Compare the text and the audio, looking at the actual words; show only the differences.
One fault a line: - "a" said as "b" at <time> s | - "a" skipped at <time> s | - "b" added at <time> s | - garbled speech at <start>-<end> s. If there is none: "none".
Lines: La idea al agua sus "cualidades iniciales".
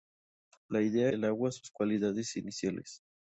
none